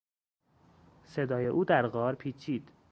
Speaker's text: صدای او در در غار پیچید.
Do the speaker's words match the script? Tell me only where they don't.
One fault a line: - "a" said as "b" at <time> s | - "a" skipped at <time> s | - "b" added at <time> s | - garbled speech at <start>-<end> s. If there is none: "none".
- "در" skipped at 1.9 s